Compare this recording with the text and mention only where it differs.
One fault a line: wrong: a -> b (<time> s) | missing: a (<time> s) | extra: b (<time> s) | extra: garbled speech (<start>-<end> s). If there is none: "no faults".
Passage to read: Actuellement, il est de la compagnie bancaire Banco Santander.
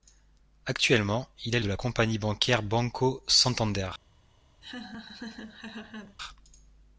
no faults